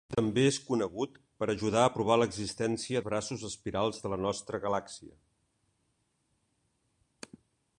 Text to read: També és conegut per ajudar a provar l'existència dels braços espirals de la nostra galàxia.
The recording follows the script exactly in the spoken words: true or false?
false